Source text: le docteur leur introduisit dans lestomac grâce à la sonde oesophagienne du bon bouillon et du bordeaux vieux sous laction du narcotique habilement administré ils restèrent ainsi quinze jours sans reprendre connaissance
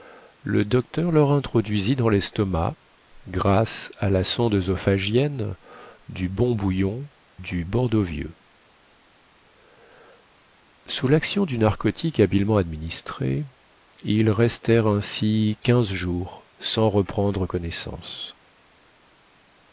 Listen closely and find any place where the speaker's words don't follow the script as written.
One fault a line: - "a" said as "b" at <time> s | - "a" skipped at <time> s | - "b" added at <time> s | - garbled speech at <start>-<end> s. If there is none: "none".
- "et" skipped at 7.1 s